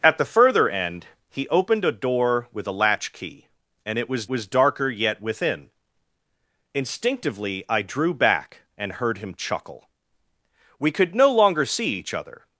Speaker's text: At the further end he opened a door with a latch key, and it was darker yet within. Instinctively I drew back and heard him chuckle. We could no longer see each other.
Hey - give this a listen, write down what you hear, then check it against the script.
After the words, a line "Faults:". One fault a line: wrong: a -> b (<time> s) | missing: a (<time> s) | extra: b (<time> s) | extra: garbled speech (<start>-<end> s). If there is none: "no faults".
At the further end he opened a door with a latch key, and it was was darker yet within. Instinctively I drew back and heard him chuckle. We could no longer see each other.
Faults:
extra: was (4.3 s)